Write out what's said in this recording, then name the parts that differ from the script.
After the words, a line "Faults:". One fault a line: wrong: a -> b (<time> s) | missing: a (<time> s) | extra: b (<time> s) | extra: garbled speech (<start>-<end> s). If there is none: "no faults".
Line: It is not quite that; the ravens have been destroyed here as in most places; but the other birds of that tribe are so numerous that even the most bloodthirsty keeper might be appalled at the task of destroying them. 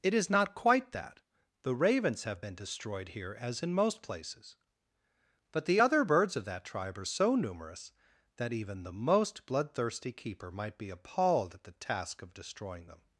It is not quite that; the ravens have been destroyed here as in most places; but the other birds of that tribe are so numerous that even the most bloodthirsty keeper might be appalled at the task of destroying them.
Faults:
no faults